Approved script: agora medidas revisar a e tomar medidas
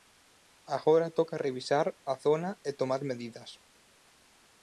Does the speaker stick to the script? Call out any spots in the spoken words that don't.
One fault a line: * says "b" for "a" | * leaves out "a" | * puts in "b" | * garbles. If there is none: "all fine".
* says "toca" for "medidas"
* puts in "zona"